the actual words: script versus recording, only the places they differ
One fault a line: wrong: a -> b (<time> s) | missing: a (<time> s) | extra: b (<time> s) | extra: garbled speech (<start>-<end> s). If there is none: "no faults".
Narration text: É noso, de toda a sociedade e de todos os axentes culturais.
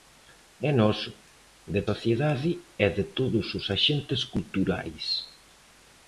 missing: toda a (1.8 s)